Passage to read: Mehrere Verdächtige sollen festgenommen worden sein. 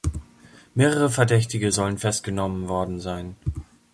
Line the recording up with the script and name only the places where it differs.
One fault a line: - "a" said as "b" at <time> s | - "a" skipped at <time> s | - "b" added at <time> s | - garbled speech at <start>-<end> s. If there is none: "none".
none